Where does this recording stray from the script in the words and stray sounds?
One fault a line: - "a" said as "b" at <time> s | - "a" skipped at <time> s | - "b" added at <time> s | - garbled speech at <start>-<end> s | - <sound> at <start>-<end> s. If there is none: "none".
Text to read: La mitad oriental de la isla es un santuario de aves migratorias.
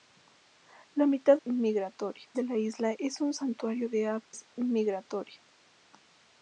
- "oriental" said as "migratorias" at 1.5 s
- dropout at 4.2-4.3 s